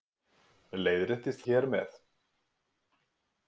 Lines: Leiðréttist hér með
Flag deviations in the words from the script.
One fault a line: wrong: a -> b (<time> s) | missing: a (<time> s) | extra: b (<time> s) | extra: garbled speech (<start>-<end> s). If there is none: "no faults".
no faults